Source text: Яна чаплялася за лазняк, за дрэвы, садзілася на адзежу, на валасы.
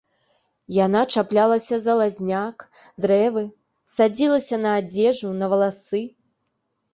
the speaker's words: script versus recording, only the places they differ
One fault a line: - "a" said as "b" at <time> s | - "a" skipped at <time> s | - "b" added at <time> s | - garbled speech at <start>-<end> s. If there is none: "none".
- "за" skipped at 2.6 s